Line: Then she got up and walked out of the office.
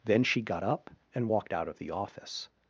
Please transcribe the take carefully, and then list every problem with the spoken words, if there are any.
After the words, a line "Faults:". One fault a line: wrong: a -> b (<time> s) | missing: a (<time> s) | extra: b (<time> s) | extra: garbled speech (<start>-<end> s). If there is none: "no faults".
Then she got up and walked out of the office.
Faults:
no faults